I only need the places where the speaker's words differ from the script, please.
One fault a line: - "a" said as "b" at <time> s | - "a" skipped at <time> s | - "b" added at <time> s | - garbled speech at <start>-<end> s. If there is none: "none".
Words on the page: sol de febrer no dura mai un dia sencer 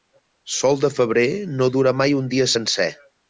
none